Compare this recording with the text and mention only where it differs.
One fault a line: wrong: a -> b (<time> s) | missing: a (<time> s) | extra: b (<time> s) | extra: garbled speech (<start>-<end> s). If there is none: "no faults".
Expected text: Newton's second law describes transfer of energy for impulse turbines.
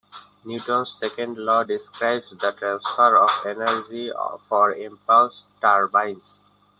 extra: the (2.3 s)